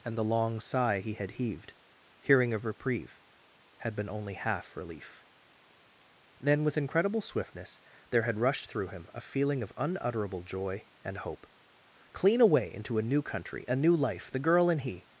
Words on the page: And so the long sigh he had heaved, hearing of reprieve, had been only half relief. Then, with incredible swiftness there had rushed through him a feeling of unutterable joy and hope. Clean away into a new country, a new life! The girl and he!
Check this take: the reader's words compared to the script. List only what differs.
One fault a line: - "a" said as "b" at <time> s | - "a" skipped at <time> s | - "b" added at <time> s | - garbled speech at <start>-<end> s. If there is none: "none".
- "so" skipped at 0.2 s